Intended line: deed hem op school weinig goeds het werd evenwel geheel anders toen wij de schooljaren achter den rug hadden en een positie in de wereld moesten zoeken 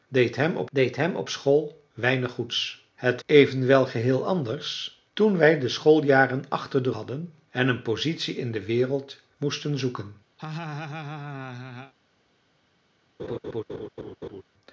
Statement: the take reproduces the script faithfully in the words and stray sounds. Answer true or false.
false